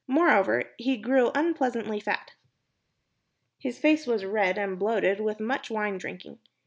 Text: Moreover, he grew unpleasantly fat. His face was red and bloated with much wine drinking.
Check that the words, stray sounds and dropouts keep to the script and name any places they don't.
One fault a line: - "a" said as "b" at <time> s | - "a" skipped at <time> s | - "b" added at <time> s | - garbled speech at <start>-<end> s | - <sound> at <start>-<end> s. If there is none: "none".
none